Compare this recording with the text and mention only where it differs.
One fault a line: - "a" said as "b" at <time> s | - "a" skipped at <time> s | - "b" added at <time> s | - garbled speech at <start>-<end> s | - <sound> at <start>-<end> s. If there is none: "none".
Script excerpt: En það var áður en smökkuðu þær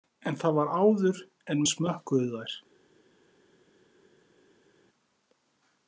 none